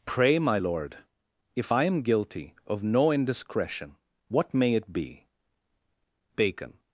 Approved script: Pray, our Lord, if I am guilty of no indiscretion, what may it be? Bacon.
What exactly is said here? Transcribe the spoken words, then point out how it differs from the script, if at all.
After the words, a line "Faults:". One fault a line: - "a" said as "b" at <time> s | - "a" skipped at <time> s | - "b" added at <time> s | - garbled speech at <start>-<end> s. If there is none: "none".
Pray, my Lord, if I am guilty of no indiscretion, what may it be? Bacon.
Faults:
- "our" said as "my" at 0.4 s